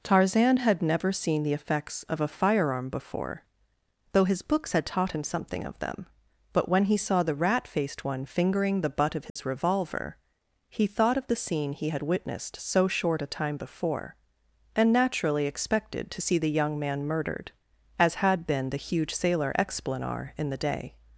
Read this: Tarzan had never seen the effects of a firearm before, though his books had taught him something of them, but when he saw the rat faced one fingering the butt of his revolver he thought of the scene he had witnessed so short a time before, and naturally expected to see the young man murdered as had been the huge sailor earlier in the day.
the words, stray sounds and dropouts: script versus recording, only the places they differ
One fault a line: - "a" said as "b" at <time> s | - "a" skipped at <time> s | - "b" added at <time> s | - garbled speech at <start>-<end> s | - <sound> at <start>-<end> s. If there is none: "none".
- dropout at 9.3-9.4 s
- "earlier" said as "explanar" at 19.6 s